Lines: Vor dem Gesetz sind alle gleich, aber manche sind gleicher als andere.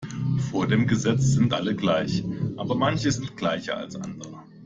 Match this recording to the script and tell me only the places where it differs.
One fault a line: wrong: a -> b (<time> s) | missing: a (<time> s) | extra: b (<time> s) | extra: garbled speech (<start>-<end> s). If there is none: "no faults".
no faults